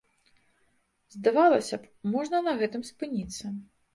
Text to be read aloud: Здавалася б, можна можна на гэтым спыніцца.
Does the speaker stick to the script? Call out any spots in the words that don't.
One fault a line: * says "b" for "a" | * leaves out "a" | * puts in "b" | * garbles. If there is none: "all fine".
* leaves out "можна"